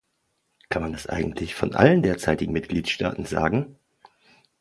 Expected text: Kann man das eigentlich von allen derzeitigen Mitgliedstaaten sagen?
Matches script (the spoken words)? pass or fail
pass